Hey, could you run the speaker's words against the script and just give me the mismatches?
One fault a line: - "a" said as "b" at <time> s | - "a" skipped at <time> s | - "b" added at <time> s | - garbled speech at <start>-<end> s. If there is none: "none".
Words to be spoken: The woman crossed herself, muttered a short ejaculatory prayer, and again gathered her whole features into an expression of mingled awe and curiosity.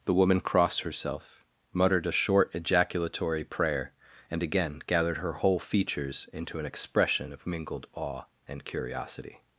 none